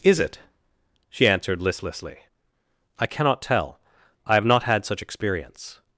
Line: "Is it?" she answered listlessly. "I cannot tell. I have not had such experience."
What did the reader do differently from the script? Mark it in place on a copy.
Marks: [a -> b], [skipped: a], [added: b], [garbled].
"Is it?" she answered listlessly. "I cannot tell. I have not had such experience."